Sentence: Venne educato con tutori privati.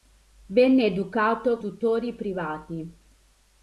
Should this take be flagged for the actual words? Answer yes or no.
yes